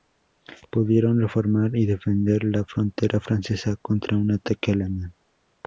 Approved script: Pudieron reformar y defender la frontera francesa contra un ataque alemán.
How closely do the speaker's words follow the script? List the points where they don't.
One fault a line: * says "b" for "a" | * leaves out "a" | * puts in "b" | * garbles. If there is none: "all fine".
all fine